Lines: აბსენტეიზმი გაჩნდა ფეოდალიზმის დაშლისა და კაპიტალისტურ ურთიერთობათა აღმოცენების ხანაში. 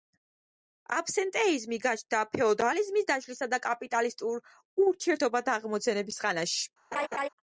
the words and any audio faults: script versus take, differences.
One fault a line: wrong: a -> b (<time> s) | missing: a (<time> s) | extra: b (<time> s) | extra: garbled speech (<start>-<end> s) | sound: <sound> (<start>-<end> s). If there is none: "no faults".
sound: laugh (6.9-7.3 s)